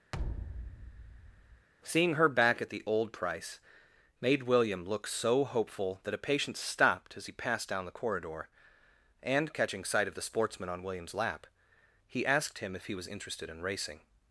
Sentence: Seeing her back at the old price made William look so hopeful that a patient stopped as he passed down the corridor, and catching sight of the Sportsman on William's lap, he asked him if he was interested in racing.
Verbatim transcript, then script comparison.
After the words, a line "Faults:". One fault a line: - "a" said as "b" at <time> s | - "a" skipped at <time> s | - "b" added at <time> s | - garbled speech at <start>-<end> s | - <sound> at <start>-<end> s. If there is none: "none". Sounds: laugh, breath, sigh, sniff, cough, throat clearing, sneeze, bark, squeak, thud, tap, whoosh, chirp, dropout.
Seeing her back at the old price made William look so hopeful that a patient stopped as he passed down the corridor, and catching sight of the Sportsman on William's lap, he asked him if he was interested in racing.
Faults:
- thud at 0.1-1.7 s